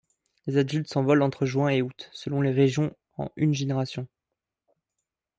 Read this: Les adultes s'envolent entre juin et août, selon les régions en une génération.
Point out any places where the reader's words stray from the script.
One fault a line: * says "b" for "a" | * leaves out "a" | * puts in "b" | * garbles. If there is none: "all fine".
all fine